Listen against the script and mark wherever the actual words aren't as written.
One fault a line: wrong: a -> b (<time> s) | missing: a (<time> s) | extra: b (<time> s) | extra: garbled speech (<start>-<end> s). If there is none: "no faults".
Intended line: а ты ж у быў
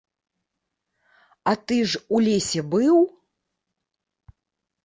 extra: лесе (2.3 s)